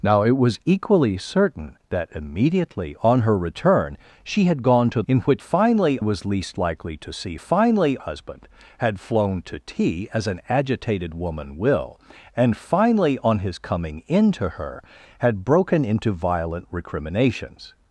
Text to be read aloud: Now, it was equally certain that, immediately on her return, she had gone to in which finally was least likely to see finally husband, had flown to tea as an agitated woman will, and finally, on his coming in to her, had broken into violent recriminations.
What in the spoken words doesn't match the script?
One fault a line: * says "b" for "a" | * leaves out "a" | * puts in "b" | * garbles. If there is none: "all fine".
all fine